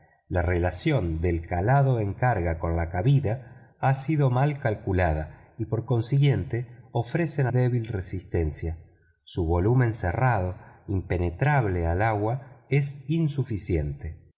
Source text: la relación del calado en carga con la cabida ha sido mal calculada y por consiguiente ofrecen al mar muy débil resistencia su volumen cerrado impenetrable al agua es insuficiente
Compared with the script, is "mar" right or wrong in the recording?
wrong